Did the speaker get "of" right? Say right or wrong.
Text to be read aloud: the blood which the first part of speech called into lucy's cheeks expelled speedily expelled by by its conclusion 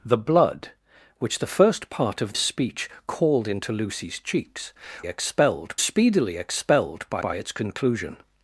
right